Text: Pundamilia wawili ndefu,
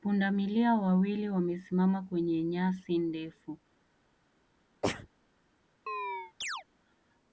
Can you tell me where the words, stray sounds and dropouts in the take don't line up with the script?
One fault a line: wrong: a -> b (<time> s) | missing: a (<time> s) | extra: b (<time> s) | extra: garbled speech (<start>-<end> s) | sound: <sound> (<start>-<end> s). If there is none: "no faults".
extra: wamesimama kwenye nyasi (1.3 s)
sound: sneeze (4.8-5.1 s)
sound: chirp (5.9-6.6 s)